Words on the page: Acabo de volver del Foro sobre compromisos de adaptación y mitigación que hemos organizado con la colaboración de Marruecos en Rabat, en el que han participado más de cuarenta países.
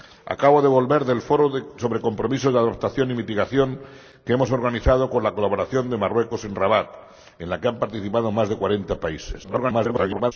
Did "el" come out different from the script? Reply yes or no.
no